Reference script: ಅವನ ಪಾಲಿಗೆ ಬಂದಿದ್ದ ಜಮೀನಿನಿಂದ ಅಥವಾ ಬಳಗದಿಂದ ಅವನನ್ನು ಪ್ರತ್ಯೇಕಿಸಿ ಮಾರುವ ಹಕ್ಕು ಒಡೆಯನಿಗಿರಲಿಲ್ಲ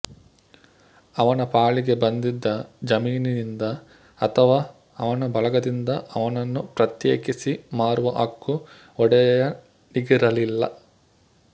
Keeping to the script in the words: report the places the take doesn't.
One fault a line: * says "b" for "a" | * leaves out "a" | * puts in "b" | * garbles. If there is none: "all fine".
* puts in "ಅವನ"